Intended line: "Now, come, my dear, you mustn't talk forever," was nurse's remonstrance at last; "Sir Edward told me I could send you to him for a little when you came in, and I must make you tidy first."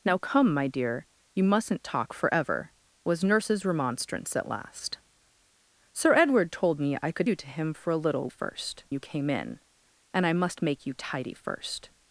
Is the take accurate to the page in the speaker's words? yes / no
no